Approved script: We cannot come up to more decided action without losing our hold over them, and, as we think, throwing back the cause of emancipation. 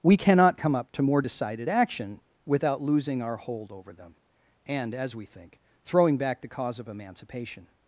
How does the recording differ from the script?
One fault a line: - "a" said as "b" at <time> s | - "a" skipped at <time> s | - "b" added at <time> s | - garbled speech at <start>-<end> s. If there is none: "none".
none